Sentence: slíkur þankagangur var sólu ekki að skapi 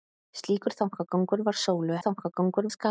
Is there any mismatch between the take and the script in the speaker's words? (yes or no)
yes